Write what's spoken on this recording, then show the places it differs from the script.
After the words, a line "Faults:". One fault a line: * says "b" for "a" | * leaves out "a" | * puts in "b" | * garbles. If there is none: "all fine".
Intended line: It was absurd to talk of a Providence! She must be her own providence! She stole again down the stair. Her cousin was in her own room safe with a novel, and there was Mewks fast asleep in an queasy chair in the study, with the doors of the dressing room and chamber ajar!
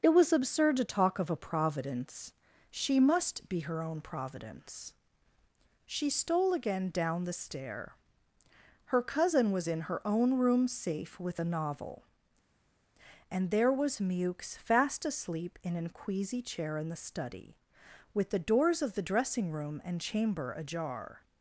It was absurd to talk of a Providence! She must be her own providence! She stole again down the stair. Her cousin was in her own room safe with a novel, and there was Mewks fast asleep in an queasy chair in the study, with the doors of the dressing room and chamber ajar!
Faults:
all fine